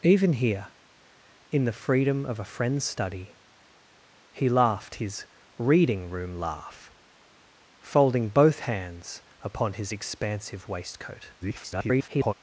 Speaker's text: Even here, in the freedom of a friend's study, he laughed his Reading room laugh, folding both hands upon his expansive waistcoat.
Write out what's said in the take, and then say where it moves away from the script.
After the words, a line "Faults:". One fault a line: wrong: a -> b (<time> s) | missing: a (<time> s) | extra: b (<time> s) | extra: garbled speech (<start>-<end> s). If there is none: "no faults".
Even here, in the freedom of a friend's study, he laughed his Reading room laugh, folding both hands upon his expansive waistcoat. [garbled]
Faults:
extra: garbled speech (11.4-12.3 s)